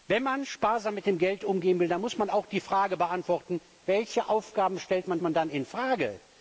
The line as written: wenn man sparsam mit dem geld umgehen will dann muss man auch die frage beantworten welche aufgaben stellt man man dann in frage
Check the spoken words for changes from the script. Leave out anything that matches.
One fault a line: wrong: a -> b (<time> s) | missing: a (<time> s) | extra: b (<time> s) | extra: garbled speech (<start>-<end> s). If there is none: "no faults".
no faults